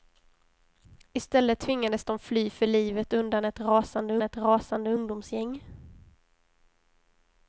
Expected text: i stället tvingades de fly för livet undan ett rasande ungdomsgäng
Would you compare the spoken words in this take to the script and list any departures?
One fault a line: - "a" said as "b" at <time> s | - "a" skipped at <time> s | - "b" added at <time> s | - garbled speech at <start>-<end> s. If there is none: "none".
- "ett rasande" added at 4.2 s